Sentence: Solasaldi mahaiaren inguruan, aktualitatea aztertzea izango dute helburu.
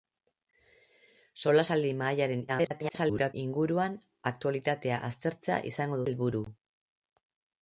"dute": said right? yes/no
no